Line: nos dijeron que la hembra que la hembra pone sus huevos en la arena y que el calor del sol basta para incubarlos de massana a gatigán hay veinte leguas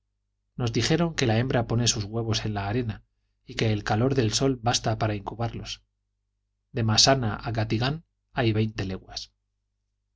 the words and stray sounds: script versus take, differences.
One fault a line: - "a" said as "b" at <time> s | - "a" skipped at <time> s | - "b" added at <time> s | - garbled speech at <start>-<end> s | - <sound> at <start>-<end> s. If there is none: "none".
- "que la hembra" skipped at 1.7 s